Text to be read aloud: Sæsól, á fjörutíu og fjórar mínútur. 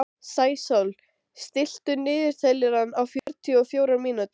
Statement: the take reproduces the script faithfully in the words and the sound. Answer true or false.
false